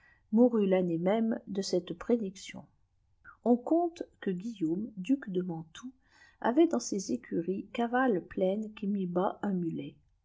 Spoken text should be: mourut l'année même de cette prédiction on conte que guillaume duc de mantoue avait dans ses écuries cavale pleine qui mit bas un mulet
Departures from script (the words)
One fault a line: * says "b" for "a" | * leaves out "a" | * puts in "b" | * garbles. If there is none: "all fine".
all fine